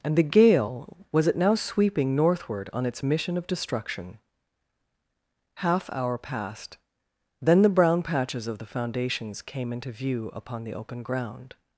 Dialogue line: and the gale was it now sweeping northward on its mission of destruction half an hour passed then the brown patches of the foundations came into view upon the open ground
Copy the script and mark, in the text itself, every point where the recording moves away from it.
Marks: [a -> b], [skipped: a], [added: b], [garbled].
and the gale was it now sweeping northward on its mission of destruction half [skipped: an] hour passed then the brown patches of the foundations came into view upon the open ground